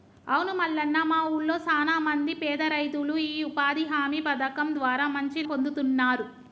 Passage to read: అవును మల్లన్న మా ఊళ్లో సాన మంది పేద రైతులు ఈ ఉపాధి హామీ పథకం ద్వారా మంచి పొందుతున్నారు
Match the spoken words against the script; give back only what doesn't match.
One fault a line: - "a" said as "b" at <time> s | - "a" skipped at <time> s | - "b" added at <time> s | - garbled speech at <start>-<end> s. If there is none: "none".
none